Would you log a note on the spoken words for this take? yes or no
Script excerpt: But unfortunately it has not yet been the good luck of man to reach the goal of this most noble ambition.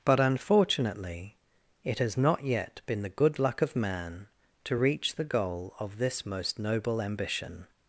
no